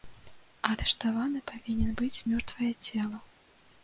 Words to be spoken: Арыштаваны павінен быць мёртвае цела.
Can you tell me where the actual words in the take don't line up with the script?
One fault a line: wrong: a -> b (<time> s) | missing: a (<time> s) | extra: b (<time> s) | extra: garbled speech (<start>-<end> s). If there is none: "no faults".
no faults